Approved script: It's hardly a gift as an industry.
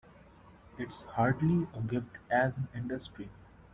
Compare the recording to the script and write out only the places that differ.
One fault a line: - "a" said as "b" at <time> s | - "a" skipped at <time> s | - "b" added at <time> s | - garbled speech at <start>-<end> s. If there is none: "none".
none